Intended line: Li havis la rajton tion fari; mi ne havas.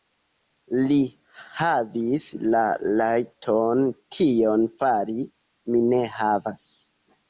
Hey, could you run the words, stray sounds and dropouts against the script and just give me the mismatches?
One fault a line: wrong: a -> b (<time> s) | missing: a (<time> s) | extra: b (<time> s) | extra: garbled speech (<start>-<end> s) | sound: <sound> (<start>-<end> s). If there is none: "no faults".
no faults